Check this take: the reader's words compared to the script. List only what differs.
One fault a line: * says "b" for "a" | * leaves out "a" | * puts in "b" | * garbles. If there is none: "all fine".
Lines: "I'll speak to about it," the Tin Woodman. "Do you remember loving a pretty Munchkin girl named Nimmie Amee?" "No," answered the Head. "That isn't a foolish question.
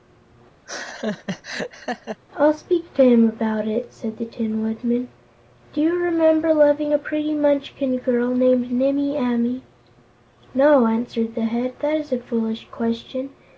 * puts in "him"
* puts in "said"
* says "is" for "isn't"